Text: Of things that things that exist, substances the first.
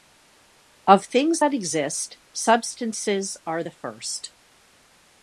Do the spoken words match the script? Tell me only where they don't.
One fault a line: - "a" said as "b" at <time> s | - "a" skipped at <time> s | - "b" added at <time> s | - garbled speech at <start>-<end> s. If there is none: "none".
- "things that" skipped at 1.5 s
- "are" added at 3.5 s